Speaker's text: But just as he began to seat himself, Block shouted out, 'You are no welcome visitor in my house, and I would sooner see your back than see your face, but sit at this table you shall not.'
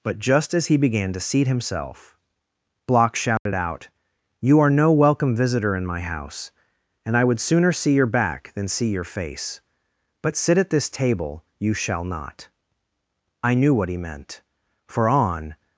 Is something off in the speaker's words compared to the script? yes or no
yes